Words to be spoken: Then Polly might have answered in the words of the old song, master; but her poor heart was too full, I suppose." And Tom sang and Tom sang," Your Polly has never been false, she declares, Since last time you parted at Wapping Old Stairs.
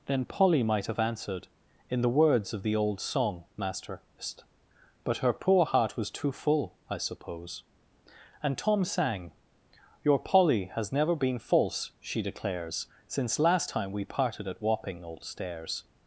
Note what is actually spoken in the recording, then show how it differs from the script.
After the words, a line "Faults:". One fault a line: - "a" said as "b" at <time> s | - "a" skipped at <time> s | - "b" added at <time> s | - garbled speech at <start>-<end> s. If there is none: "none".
Then Polly might have answered in the words of the old song, master; but her poor heart was too full, I suppose." And Tom sang," Your Polly has never been false, she declares, Since last time we parted at Wapping Old Stairs.
Faults:
- "and Tom sang" skipped at 9.3 s
- "you" said as "we" at 13.9 s